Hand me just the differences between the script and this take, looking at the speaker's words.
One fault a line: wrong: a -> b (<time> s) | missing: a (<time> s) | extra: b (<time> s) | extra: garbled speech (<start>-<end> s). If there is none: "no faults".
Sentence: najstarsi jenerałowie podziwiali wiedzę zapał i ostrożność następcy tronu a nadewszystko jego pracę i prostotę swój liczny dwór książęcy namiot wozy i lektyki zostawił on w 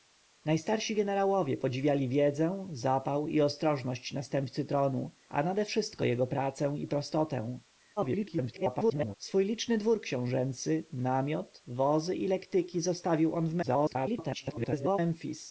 extra: garbled speech (8.0-9.1 s)
extra: garbled speech (13.6-15.0 s)